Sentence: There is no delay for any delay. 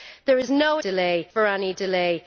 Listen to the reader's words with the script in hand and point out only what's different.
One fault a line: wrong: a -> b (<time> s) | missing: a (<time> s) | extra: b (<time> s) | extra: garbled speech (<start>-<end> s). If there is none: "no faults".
no faults